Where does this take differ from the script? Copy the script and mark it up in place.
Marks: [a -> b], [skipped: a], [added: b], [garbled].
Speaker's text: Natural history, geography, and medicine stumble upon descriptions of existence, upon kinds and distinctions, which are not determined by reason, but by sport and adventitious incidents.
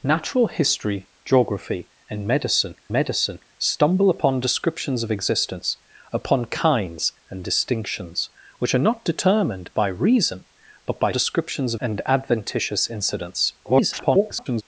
Natural history, geography, and medicine [added: medicine] stumble upon descriptions of existence, upon kinds and distinctions, which are not determined by reason, but by [sport -> descriptions] and adventitious incidents. [garbled]